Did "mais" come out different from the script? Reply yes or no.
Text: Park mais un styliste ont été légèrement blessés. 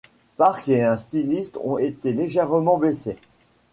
yes